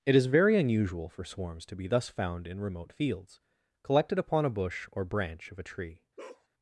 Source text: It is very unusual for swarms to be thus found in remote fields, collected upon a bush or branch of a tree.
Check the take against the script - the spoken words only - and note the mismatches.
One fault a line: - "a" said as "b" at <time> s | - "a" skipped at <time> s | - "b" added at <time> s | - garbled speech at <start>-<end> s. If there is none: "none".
none